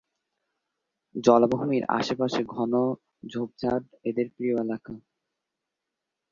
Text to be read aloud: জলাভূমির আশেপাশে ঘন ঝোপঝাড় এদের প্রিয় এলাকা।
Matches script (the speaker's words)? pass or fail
pass